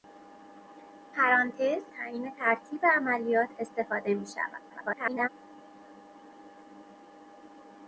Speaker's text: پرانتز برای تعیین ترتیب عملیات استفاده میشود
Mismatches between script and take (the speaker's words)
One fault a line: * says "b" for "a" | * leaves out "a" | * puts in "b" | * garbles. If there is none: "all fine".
* leaves out "برای"
* garbles